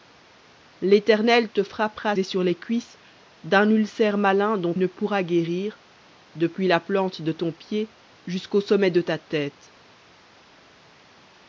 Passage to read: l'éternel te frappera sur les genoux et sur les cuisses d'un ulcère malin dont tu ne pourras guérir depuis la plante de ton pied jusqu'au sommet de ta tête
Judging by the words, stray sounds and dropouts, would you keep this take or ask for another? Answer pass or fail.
fail